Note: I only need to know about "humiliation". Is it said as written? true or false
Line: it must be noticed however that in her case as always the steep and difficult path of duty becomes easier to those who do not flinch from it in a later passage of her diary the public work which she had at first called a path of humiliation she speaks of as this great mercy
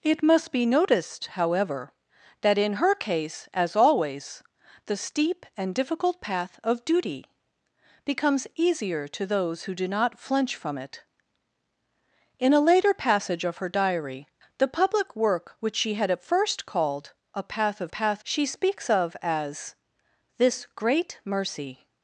false